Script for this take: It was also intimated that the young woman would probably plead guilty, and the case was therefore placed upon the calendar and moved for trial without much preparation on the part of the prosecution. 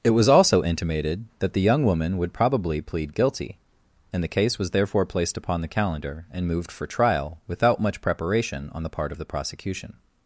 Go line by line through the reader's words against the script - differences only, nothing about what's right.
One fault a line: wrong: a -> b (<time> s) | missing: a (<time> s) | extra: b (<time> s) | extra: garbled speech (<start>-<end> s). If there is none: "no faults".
no faults